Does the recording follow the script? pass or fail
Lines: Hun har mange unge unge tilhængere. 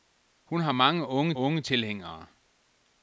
pass